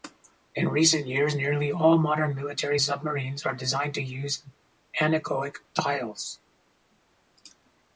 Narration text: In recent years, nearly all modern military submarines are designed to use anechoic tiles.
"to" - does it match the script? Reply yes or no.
yes